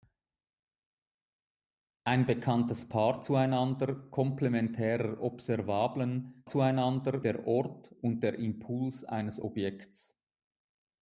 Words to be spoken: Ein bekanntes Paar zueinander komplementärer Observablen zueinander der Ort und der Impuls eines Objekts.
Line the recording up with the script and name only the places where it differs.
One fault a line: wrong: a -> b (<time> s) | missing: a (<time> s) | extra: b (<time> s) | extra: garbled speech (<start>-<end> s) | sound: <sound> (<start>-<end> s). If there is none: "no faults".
no faults